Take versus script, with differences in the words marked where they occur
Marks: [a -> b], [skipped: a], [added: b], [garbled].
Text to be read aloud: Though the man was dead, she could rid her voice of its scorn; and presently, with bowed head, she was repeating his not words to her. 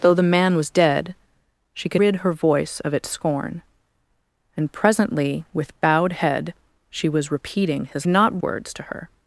Though the man was dead, she could rid her voice of its scorn; and presently, with bowed head, she was repeating his not words to her.